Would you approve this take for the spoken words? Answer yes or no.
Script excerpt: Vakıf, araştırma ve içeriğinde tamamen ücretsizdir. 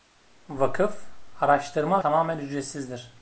no